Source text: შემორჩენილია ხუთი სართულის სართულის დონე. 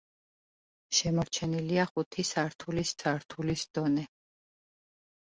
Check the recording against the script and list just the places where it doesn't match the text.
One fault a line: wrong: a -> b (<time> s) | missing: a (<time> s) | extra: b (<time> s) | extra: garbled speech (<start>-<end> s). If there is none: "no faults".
no faults